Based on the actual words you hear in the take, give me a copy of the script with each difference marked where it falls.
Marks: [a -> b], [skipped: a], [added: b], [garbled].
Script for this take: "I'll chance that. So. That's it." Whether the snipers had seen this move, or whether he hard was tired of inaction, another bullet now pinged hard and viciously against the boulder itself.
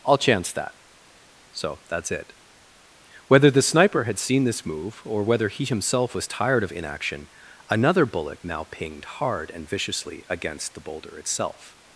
"I'll chance that. So. That's it." Whether the [snipers -> sniper] had seen this move, or whether he [hard -> himself] was tired of inaction, another bullet now pinged hard and viciously against the boulder itself.